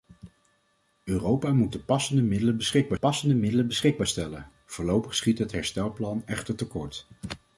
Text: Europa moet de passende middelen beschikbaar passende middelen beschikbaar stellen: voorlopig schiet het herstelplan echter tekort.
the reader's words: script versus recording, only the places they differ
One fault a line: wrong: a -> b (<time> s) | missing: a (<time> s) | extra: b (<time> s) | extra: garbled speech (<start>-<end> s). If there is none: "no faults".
no faults